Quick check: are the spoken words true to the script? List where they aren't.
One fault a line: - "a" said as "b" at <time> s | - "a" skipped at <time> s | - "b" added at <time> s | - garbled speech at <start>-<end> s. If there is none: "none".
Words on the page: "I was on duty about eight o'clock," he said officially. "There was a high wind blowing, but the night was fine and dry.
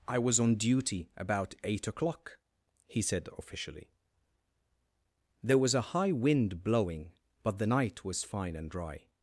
none